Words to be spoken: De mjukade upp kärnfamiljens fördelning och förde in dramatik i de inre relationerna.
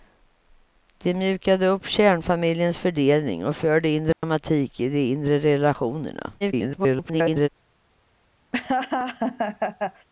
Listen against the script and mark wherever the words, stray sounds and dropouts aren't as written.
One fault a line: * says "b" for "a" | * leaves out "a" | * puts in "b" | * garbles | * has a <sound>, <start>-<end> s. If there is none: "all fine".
* has a dropout, 4.1-4.2 s
* garbles
* has a laugh, 8.5-10.1 s